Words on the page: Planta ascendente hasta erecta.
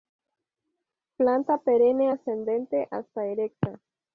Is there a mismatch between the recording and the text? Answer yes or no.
yes